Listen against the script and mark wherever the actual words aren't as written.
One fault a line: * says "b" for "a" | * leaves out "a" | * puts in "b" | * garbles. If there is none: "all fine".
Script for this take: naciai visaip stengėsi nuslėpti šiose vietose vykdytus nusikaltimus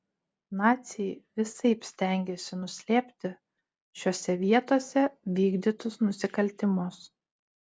all fine